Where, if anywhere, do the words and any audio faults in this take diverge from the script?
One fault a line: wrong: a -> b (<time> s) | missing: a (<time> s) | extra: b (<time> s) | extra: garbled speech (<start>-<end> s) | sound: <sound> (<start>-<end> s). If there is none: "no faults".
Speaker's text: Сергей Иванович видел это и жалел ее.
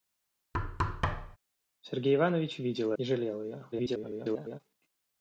sound: thud (0.5-1.4 s)
missing: это (2.9 s)
extra: garbled speech (3.7-4.6 s)